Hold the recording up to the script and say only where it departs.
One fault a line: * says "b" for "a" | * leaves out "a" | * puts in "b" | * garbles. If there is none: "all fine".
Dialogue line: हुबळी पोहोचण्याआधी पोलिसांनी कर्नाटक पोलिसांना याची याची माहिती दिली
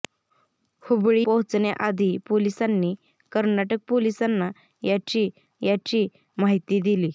all fine